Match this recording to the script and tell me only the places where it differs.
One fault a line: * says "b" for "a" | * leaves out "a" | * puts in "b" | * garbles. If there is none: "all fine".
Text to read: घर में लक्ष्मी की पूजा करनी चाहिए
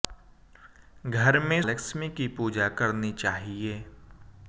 all fine